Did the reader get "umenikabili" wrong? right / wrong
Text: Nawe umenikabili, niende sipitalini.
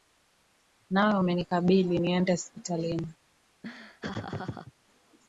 right